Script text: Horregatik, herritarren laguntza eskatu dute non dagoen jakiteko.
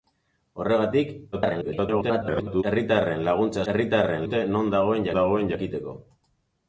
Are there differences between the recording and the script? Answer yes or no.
yes